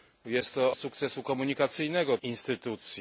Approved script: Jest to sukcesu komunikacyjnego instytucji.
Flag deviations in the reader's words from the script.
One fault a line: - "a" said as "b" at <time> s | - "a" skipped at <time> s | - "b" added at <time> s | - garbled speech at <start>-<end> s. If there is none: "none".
none